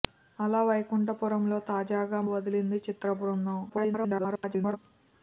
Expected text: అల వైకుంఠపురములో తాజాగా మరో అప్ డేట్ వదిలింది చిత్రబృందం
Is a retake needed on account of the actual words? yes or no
yes